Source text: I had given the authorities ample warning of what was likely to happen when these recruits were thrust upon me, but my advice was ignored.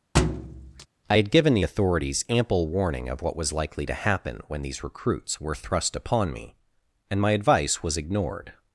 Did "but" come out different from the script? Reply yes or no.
yes